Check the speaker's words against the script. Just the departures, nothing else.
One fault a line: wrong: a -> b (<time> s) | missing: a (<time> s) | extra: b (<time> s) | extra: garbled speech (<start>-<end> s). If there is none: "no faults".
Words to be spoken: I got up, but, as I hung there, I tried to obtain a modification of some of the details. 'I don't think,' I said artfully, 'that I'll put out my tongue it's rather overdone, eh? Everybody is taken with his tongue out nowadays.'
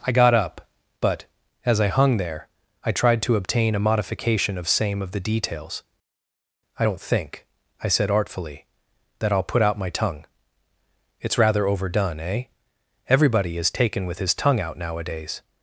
wrong: some -> same (4.7 s)